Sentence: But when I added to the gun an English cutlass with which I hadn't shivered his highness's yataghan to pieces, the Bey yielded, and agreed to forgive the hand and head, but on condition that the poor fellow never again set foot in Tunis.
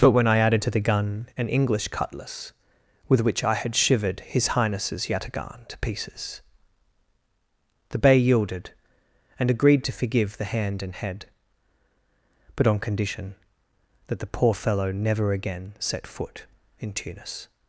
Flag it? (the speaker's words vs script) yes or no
yes